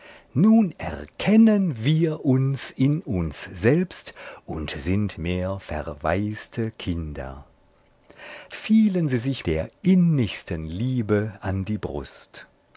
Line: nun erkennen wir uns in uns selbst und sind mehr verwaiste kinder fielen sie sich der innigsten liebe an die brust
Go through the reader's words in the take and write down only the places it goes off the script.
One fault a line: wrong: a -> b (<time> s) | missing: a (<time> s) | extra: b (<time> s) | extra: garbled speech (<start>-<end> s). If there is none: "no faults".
no faults